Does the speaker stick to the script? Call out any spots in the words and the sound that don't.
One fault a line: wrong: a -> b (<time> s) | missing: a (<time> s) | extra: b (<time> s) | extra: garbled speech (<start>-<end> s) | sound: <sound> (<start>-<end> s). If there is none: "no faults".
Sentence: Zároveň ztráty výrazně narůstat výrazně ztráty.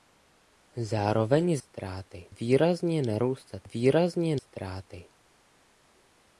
no faults